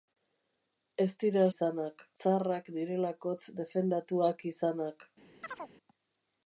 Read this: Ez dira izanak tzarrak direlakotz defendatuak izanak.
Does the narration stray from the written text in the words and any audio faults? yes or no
yes